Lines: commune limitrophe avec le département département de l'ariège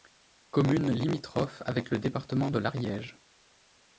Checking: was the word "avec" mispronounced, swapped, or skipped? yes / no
no